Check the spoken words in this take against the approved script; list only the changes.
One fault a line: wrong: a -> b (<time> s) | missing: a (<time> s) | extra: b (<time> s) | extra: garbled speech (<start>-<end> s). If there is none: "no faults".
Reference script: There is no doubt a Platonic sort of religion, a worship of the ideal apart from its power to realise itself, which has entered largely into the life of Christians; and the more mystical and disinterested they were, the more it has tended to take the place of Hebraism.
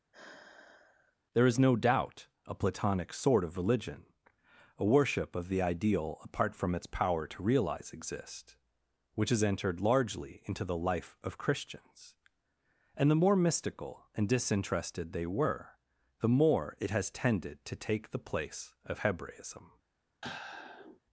wrong: realise itself -> realize exist (7.4 s)